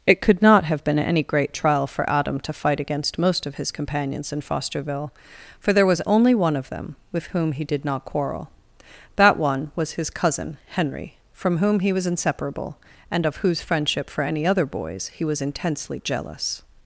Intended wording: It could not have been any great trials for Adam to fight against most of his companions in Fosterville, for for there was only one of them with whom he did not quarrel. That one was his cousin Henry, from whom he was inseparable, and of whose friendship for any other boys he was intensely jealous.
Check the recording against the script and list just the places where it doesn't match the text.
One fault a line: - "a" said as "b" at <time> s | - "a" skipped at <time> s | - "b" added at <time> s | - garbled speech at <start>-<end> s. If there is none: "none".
- "trials" said as "trial" at 1.5 s
- "for" skipped at 5.7 s